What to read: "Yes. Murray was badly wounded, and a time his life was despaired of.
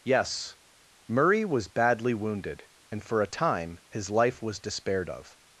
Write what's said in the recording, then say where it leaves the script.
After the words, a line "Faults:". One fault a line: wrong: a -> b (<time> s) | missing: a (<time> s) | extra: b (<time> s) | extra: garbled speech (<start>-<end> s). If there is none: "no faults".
"Yes. Murray was badly wounded, and for a time his life was despaired of.
Faults:
extra: for (3.0 s)